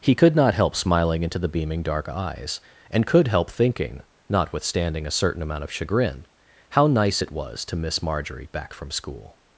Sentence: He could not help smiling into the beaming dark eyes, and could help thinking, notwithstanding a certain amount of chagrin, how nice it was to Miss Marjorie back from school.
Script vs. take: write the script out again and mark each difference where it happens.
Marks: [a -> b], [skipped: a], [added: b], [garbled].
He could not help smiling into the beaming dark eyes, and could help thinking, notwithstanding a certain amount of chagrin, how nice it was to Miss Marjorie back from school.